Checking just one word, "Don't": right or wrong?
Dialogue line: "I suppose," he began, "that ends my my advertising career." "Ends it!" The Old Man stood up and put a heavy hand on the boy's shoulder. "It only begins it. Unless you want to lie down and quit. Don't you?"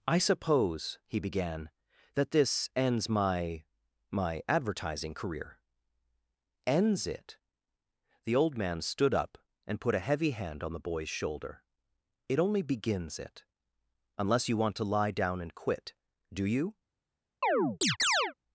wrong